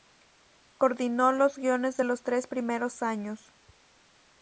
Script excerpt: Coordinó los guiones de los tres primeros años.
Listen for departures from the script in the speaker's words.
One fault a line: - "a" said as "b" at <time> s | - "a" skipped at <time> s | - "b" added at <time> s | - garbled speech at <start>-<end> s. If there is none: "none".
none